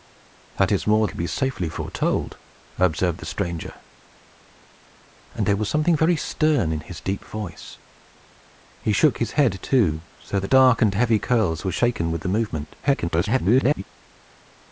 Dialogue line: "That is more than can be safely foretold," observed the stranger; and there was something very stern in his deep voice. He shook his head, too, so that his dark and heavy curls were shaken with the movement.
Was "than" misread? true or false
true